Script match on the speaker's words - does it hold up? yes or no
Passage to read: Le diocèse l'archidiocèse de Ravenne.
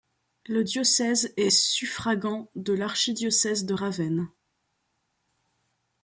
no